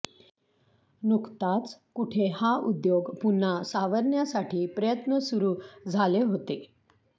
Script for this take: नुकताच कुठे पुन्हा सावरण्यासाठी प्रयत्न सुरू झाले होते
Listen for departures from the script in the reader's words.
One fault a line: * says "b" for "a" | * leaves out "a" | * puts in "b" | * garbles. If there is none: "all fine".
* puts in "हा उद्योग"